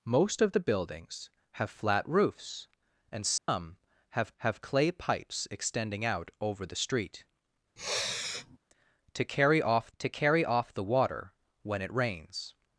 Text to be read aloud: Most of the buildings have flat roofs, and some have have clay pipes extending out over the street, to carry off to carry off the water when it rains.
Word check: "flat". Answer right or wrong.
right